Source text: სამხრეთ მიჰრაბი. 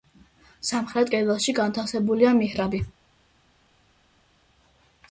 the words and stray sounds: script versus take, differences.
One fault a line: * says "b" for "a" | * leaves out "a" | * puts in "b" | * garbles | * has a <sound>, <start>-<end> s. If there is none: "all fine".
* puts in "კედელში განთავსებულია"